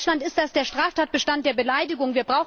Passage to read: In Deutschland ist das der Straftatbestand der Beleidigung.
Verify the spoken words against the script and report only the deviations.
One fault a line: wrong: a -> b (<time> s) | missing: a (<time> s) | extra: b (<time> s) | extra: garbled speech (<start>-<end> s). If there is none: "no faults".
no faults